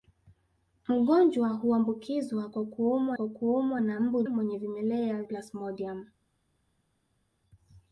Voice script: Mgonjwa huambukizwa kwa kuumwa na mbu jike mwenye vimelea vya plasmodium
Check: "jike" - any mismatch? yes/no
yes